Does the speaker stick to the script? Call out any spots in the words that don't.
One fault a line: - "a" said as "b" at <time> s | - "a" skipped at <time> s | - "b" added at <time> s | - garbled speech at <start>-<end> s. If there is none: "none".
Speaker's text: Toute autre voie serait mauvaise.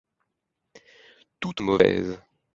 - "autre voie serait" skipped at 1.6 s